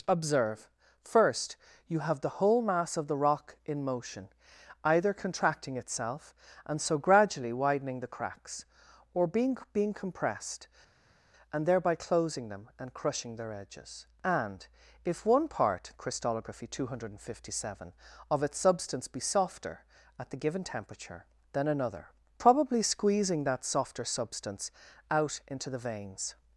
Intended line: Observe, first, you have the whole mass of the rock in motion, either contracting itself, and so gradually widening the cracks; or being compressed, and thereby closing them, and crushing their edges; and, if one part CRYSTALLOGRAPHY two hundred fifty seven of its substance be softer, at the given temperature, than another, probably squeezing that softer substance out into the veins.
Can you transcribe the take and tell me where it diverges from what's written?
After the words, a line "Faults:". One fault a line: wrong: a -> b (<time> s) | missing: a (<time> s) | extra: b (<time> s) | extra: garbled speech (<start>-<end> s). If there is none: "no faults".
Observe, first, you have the whole mass of the rock in motion, either contracting itself, and so gradually widening the cracks; or being being compressed, and thereby closing them, and crushing their edges; and, if one part CRYSTALLOGRAPHY two hundred fifty seven of its substance be softer, at the given temperature, than another, probably squeezing that softer substance out into the veins.
Faults:
extra: being (9.7 s)